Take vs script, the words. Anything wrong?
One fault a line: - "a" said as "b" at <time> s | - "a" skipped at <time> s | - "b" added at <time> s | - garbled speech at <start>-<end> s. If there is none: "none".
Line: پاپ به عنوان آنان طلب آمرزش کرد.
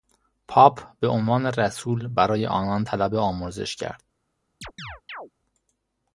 - "رسول برای" added at 1.4 s